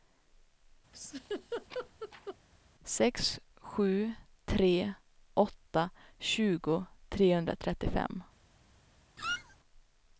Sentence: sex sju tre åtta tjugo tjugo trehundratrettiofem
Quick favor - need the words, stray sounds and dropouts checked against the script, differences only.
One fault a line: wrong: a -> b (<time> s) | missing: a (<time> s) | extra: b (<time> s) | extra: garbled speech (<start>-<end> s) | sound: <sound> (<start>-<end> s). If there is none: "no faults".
sound: laugh (0.9-2.4 s)
missing: tjugo (6.9 s)
sound: squeak (9.2-9.6 s)